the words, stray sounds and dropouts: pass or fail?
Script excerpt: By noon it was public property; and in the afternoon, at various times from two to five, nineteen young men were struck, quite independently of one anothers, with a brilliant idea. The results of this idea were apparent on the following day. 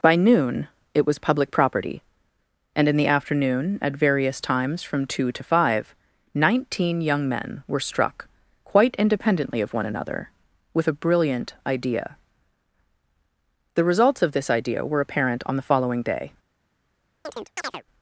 fail